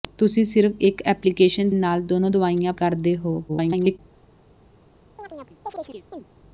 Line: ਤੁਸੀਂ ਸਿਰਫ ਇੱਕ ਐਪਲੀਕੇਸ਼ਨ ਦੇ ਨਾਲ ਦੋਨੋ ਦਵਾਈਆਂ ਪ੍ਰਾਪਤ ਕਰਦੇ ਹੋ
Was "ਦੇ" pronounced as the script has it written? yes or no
no